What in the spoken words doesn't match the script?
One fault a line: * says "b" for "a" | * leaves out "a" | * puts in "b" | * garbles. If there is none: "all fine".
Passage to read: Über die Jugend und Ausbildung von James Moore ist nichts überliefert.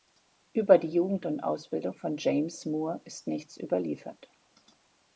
all fine